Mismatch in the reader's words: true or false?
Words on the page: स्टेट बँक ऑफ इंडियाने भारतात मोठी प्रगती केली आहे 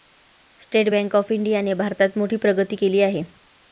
false